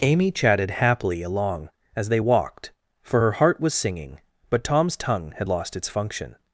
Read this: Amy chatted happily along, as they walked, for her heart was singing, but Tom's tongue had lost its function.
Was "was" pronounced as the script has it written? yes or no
yes